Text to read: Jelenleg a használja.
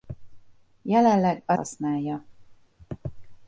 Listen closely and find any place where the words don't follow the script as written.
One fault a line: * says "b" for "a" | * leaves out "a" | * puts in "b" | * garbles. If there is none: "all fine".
all fine